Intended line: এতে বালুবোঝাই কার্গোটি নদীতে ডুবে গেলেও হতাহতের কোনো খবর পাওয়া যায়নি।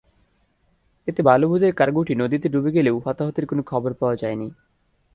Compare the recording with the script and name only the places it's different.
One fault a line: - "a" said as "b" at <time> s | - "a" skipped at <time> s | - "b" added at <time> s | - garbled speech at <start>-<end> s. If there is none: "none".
none